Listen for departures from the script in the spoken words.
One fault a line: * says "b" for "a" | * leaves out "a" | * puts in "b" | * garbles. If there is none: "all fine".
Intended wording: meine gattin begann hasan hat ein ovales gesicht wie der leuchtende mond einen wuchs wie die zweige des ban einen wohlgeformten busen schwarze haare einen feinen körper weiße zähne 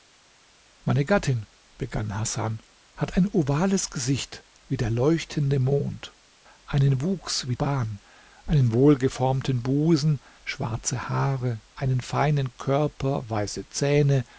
* leaves out "die zweige des"